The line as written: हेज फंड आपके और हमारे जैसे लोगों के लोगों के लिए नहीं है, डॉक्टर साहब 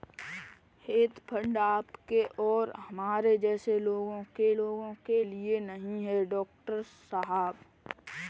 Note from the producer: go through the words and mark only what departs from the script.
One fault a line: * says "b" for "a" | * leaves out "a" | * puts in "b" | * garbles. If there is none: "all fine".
all fine